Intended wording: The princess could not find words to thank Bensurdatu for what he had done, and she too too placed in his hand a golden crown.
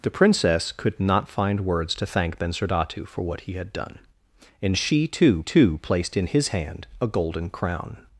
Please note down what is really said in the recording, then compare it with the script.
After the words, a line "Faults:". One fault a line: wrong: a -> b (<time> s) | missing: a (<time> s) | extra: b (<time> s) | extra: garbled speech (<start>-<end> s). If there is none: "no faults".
The princess could not find words to thank Bensurdatu for what he had done, and she too too placed in his hand a golden crown.
Faults:
no faults